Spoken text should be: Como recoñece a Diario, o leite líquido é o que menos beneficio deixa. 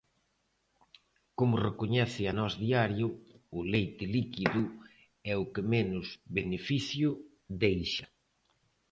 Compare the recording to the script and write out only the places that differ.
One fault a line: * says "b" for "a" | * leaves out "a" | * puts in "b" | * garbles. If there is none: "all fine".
* puts in "Nós"